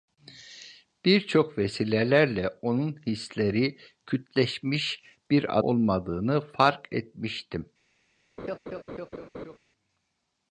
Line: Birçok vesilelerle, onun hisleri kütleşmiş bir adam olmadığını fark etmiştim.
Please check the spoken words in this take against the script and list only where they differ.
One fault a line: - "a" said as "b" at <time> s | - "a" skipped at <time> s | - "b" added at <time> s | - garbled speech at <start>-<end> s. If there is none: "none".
- "adam" skipped at 5.6 s